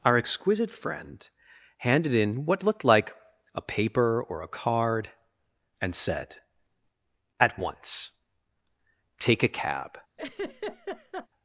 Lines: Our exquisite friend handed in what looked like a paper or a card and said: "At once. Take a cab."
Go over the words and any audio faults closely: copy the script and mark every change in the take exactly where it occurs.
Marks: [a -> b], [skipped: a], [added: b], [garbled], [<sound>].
Our exquisite friend handed in what looked like a paper or a card and said: "At once. Take a cab." [laugh]